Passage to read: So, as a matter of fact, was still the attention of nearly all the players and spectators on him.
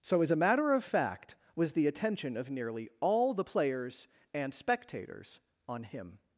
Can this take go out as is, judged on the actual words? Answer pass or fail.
fail